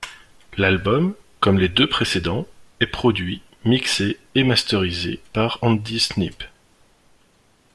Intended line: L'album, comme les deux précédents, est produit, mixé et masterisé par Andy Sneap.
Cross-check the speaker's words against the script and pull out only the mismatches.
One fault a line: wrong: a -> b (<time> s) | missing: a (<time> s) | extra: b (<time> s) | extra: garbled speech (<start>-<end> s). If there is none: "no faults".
no faults